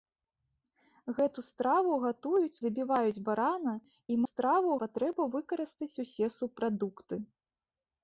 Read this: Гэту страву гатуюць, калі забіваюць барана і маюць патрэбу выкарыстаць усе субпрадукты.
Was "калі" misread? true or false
true